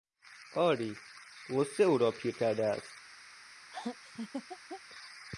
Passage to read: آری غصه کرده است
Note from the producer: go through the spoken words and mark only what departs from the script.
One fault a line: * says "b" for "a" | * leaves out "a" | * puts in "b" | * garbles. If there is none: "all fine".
* puts in "او را پیر"